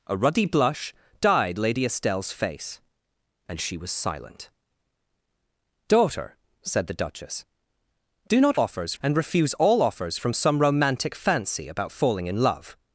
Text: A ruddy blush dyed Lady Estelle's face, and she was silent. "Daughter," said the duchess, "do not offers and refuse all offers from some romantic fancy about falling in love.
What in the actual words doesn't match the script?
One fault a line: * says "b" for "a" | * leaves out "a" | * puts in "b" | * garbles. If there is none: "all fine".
all fine